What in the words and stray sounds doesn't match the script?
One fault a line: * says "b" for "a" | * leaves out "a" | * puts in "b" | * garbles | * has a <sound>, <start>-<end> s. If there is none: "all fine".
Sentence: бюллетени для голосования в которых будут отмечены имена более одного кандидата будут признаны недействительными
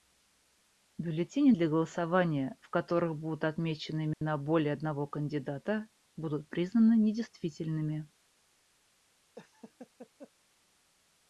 * has a dropout, 4.1-4.2 s
* has a laugh, 9.4-10.3 s